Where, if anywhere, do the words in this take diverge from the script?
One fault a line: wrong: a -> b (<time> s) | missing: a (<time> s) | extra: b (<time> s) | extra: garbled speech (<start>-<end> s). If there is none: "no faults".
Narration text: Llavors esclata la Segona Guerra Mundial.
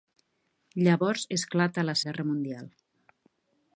missing: Segona (2.0 s)